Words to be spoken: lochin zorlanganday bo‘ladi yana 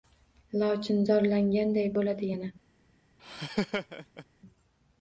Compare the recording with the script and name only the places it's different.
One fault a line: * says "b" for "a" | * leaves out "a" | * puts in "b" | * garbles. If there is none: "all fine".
all fine